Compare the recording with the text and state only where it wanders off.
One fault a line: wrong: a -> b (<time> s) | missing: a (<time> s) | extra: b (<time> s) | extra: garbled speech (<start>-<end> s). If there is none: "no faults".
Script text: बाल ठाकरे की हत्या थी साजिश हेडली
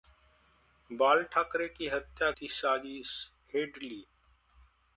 no faults